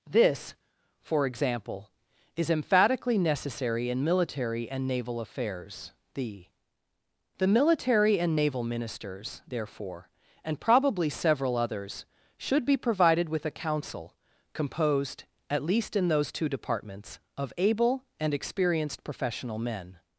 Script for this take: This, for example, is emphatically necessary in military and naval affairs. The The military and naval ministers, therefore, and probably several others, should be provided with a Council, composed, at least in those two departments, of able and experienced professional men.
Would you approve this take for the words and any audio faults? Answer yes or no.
yes